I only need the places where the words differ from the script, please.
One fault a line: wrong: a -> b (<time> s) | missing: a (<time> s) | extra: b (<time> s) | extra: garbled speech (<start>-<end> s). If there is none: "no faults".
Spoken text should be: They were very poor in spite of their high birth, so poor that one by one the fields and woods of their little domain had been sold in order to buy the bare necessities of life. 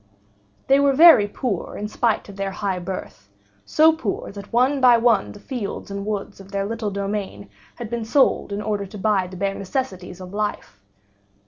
no faults